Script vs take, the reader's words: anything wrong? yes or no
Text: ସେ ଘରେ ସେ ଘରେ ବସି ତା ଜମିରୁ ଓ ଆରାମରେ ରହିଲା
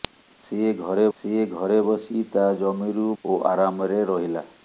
no